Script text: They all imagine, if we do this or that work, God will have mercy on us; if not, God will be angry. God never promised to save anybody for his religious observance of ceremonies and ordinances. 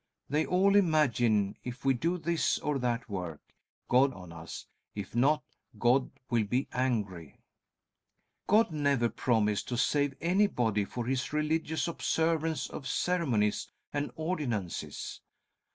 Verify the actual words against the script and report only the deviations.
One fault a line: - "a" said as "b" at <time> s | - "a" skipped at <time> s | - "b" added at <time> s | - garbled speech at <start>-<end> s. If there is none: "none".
- "will have mercy" skipped at 4.2 s